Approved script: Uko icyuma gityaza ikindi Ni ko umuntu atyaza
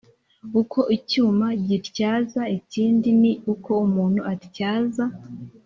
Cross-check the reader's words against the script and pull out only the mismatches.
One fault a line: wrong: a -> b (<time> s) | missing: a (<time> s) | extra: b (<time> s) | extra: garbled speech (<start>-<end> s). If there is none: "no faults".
no faults